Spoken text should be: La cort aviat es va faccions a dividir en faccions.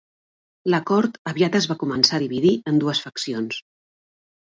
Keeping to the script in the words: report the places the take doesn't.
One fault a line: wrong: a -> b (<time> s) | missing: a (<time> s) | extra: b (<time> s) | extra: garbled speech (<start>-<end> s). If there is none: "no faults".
wrong: faccions -> començar (1.8 s)
extra: dues (2.8 s)